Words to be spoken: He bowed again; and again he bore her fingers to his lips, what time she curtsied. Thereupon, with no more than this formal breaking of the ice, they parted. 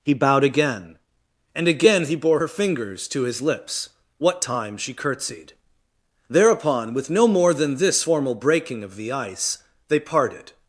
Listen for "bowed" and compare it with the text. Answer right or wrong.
right